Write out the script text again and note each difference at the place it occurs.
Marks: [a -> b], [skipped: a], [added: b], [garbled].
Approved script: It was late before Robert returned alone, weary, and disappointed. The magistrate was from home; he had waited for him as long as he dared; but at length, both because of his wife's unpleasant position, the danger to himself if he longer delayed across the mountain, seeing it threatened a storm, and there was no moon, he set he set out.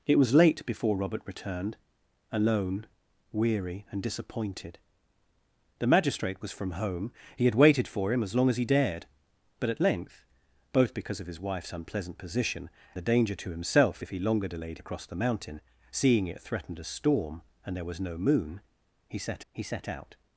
It was late before Robert returned alone, weary, and disappointed. The magistrate was from home; he had waited for him as long as he dared; but at length, both because of his wife's unpleasant position, the danger to himself if he longer delayed across the mountain, seeing it threatened a storm, and there was no moon, he set he set out.